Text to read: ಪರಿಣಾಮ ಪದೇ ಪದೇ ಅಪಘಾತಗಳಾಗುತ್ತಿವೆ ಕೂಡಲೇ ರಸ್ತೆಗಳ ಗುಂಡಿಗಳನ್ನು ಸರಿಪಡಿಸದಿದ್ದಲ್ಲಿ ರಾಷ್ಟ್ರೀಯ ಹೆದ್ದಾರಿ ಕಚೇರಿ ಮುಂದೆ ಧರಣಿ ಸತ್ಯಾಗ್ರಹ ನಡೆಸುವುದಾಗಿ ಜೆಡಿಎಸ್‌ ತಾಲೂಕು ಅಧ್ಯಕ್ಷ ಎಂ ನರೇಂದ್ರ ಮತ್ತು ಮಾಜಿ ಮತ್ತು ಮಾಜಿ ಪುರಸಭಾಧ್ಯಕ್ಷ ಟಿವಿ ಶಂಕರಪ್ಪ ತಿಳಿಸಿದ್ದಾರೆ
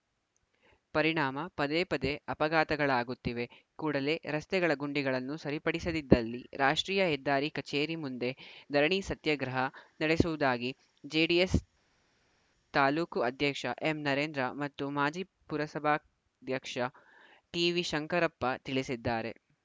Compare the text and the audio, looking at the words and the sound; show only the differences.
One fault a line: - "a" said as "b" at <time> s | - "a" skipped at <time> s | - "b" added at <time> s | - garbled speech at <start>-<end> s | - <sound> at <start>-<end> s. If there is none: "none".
- "ಮತ್ತು ಮಾಜಿ" skipped at 15.2 s